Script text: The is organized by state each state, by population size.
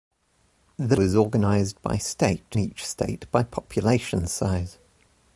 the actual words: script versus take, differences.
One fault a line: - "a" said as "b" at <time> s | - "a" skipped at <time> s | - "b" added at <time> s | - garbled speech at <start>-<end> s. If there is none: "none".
none